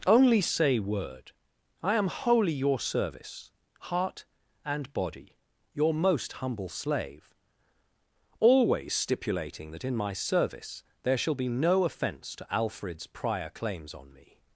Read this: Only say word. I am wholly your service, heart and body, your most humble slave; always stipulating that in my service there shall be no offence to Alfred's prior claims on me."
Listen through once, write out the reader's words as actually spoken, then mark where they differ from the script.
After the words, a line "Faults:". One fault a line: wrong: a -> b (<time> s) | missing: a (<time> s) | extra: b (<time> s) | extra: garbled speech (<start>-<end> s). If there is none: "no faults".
Only say word. I am wholly your service, heart and body, your most humble slave; always stipulating that in my service there shall be no offence to Alfred's prior claims on me."
Faults:
no faults